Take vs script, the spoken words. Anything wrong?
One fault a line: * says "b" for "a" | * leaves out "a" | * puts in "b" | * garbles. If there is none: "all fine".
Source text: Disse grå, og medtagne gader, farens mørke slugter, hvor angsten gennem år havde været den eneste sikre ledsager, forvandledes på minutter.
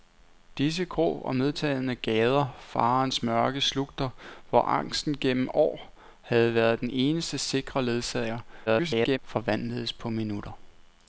* garbles